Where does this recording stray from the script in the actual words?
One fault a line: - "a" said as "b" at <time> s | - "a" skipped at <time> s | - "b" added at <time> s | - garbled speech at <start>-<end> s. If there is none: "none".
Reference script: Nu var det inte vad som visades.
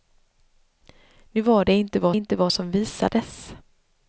- "inte vad" added at 2.1 s